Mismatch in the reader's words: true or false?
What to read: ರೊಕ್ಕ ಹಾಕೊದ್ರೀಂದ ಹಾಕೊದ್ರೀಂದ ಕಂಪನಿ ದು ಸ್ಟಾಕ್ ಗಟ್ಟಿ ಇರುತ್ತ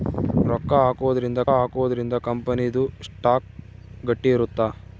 false